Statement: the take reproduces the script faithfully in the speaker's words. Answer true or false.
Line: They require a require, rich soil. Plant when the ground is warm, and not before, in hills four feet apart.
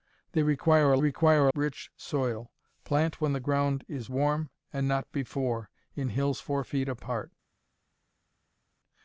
true